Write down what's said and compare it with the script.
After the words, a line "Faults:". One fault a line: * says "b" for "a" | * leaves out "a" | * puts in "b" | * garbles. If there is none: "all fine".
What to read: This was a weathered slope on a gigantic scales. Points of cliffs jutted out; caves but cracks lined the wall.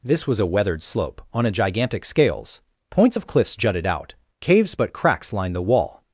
This was a weathered slope on a gigantic scales. Points of cliffs jutted out; caves but cracks lined the wall.
Faults:
all fine